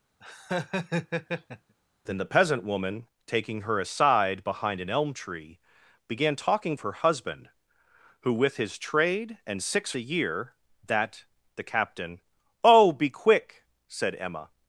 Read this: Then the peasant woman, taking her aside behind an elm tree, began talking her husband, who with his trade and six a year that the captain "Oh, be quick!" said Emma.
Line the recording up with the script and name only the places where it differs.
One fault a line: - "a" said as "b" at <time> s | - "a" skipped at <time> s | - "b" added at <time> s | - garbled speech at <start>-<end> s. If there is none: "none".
none